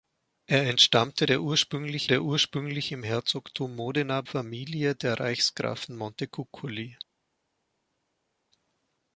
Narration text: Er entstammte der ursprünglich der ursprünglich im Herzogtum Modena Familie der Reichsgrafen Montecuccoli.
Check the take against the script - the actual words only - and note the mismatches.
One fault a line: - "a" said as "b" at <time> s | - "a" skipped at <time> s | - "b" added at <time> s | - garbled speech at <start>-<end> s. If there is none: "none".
none